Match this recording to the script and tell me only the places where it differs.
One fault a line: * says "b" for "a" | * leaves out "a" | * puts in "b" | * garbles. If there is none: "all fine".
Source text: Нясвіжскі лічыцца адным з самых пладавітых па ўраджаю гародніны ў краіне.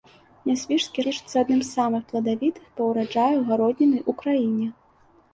all fine